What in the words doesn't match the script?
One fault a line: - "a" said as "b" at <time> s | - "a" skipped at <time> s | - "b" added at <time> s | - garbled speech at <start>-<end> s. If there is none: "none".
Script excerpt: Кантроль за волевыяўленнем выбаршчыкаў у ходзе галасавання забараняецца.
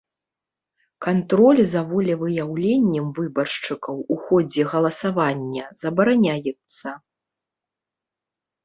none